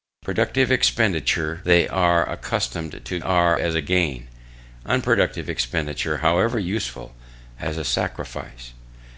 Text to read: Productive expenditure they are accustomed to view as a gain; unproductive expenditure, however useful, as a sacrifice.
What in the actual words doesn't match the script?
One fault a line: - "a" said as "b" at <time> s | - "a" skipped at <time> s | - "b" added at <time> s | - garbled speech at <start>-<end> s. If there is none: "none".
- "view" said as "are" at 3.2 s